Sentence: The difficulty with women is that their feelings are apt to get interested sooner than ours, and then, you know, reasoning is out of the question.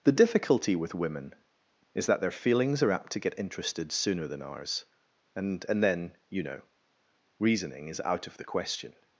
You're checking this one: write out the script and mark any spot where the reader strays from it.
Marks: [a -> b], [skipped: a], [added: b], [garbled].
The difficulty with women is that their feelings are apt to get interested sooner than ours, and [added: and] then, you know, reasoning is out of the question.